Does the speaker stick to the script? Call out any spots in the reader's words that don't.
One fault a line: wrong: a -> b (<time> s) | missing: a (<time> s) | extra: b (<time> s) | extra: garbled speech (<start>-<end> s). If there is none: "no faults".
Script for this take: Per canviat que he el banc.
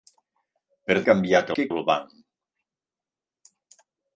no faults